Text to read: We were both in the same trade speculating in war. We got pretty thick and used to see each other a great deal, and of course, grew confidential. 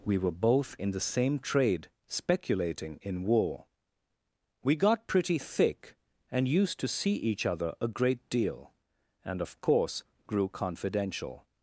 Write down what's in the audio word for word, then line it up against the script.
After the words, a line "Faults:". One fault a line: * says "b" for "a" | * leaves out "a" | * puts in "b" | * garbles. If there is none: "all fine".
We were both in the same trade speculating in war. We got pretty thick and used to see each other a great deal, and of course, grew confidential.
Faults:
all fine